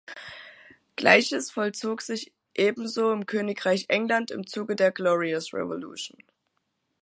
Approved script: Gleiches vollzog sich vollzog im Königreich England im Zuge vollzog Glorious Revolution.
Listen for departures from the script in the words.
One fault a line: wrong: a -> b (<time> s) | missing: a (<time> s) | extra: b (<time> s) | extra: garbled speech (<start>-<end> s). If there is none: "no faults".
wrong: vollzog -> ebenso (2.5 s)
wrong: vollzog -> der (4.7 s)